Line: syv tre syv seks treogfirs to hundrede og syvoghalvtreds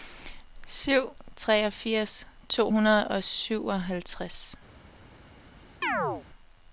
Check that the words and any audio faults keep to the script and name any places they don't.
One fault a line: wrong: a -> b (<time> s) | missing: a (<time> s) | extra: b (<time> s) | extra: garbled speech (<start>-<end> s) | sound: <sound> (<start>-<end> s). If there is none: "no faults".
missing: tre syv seks (1.1 s)
sound: chirp (5.8-6.2 s)